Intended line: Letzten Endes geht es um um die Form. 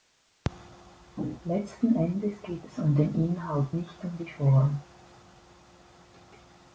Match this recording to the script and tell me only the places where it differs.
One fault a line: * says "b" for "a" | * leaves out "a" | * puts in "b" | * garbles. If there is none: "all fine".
* puts in "den Inhalt nicht"